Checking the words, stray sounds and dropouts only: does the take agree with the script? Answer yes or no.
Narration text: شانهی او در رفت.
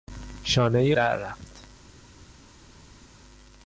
no